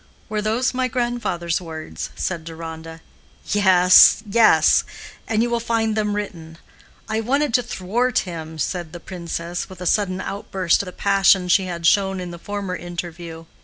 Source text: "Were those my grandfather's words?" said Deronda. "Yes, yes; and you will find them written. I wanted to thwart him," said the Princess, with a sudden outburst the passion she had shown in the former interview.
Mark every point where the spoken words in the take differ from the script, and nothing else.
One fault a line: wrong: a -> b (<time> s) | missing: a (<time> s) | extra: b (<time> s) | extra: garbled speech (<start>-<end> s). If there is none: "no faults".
no faults